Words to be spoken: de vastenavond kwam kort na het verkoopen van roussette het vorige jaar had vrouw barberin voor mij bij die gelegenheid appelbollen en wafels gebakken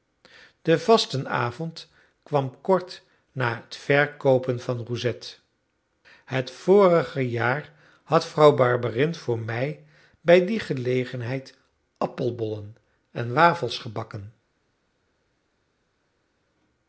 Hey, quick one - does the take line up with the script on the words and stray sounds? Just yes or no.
yes